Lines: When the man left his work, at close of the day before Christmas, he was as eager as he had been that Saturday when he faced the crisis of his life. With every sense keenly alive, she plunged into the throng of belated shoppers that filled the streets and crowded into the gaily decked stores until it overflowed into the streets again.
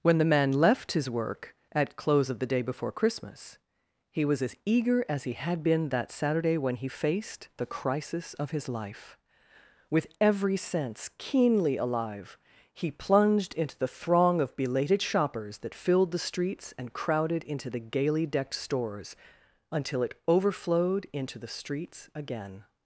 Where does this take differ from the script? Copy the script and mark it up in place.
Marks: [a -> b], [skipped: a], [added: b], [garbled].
When the man left his work, at close of the day before Christmas, he was as eager as he had been that Saturday when he faced the crisis of his life. With every sense keenly alive, [she -> he] plunged into the throng of belated shoppers that filled the streets and crowded into the gaily decked stores until it overflowed into the streets again.